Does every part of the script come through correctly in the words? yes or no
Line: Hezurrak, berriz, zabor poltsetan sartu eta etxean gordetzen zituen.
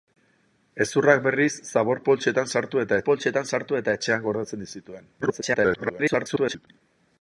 no